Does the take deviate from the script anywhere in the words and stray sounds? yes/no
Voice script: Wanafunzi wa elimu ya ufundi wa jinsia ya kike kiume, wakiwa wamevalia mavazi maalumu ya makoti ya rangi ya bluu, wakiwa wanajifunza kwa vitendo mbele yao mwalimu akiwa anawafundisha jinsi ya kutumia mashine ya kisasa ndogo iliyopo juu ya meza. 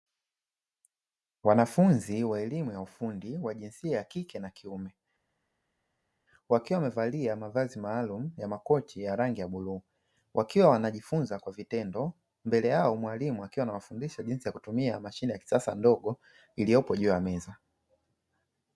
yes